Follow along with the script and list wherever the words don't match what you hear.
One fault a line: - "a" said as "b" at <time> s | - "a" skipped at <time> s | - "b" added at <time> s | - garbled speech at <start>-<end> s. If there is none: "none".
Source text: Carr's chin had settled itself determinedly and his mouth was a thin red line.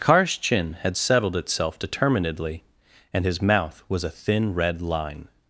none